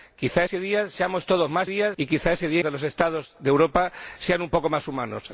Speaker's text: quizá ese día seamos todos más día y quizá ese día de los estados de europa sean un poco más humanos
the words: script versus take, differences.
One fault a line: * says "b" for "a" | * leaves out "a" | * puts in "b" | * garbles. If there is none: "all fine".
all fine